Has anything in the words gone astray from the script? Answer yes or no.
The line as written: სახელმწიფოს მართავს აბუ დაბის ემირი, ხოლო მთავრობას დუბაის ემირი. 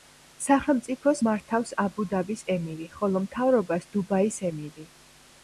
no